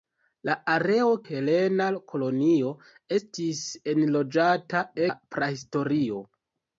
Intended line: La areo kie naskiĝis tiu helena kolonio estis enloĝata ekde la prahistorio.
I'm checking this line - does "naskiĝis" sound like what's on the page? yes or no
no